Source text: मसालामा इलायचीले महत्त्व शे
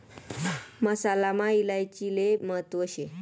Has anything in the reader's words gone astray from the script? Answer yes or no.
no